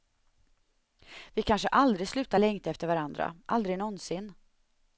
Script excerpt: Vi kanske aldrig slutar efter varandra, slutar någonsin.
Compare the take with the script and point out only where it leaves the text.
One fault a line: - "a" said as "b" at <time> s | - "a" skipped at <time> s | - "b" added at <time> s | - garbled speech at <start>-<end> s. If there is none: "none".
- "längta" added at 2.4 s
- "slutar" said as "aldrig" at 3.5 s